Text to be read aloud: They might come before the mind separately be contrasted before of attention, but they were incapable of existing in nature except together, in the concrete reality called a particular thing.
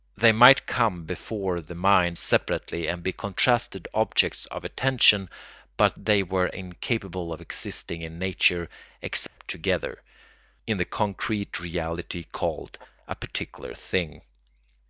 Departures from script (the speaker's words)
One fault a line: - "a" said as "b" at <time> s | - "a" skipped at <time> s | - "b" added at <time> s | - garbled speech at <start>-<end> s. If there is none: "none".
- "and" added at 2.9 s
- "before" said as "objects" at 3.9 s